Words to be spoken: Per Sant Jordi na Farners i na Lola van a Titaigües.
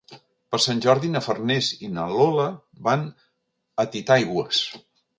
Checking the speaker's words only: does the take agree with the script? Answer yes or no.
yes